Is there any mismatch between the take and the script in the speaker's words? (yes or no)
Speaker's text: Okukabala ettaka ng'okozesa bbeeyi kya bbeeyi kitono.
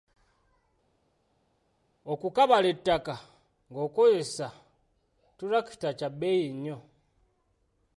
yes